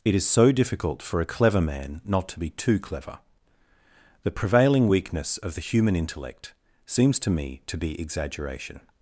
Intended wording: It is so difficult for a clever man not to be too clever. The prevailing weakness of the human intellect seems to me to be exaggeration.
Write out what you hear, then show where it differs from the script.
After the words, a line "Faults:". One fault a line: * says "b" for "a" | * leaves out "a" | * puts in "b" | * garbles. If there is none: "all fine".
It is so difficult for a clever man not to be too clever. The prevailing weakness of the human intellect seems to me to be exaggeration.
Faults:
all fine